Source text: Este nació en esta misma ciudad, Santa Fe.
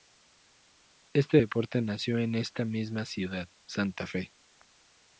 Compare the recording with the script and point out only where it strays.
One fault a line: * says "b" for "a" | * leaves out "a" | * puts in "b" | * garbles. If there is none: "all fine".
* puts in "deporte"